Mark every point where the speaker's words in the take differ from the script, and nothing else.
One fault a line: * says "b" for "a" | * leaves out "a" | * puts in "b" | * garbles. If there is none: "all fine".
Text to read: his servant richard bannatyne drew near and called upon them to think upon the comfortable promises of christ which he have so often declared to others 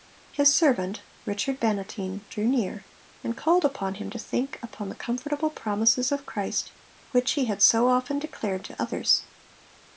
* says "him" for "them"
* says "had" for "have"